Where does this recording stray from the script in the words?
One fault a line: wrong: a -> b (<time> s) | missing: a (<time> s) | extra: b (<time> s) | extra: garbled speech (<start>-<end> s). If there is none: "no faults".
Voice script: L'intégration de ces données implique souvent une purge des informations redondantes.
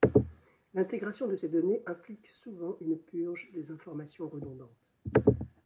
no faults